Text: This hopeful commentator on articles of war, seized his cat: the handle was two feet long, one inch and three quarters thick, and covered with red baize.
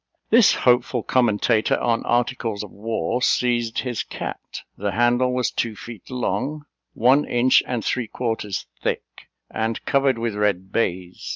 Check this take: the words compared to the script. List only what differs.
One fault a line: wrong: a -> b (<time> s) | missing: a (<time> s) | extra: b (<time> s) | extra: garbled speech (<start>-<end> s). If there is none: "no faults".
no faults